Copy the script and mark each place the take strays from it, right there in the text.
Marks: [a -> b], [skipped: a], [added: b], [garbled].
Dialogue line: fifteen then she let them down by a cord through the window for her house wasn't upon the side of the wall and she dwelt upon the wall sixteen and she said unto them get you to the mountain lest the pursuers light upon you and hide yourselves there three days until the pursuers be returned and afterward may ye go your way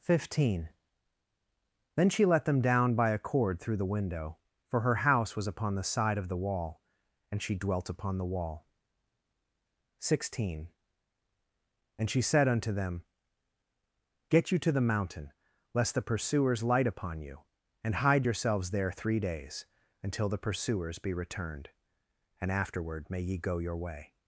fifteen then she let them down by a cord through the window for her house [wasn't -> was] upon the side of the wall and she dwelt upon the wall sixteen and she said unto them get you to the mountain lest the pursuers light upon you and hide yourselves there three days until the pursuers be returned and afterward may ye go your way